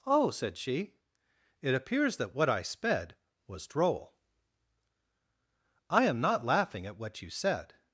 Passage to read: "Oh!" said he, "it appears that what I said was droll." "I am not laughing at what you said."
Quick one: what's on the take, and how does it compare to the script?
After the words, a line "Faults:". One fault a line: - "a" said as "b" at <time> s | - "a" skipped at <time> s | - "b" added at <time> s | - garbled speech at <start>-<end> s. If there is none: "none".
"Oh!" said she, "it appears that what I sped was droll." "I am not laughing at what you said."
Faults:
- "he" said as "she" at 0.6 s
- "said" said as "sped" at 2.6 s